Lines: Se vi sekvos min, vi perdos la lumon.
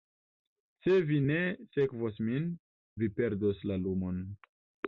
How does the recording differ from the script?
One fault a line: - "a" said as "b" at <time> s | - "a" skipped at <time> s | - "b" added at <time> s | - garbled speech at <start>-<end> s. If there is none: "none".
- "ne" added at 1.2 s